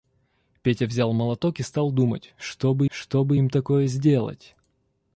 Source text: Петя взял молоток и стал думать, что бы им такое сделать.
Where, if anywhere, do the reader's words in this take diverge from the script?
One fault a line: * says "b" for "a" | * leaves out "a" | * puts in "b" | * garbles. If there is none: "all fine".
* puts in "что бы"